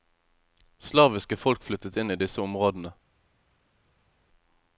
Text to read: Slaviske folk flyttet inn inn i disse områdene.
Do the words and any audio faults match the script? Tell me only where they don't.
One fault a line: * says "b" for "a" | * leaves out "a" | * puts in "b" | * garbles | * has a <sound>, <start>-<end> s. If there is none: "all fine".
* leaves out "inn"